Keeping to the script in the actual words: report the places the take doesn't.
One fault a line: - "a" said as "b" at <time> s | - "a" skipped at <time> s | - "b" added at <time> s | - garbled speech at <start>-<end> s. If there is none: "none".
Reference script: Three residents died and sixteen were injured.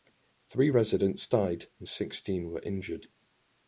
none